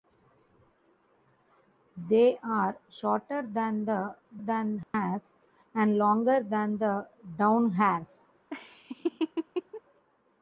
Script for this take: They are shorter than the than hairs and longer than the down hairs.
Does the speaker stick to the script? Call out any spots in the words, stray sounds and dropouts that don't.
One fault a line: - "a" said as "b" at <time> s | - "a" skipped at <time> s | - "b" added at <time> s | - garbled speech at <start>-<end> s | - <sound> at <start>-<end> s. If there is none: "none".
- dropout at 4.8-4.9 s
- laugh at 8.5-9.8 s